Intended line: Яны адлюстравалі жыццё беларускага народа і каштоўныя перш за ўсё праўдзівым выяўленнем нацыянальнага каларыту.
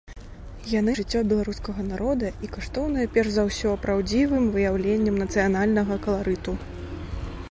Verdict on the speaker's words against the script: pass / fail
fail